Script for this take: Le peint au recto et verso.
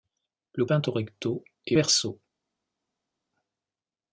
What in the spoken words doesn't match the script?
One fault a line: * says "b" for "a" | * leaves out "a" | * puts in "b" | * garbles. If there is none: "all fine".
all fine